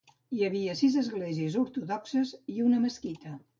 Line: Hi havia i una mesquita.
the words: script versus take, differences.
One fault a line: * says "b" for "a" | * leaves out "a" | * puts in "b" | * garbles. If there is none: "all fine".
* puts in "sis esglésies ortodoxes"